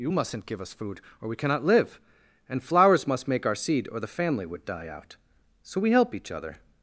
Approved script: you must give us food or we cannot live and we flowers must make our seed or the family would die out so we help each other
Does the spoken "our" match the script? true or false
true